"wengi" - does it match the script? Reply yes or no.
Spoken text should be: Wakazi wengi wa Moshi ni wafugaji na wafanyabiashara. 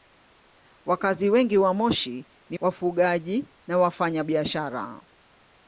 yes